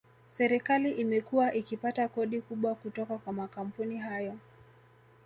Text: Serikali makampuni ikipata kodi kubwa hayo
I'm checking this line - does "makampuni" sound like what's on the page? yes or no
no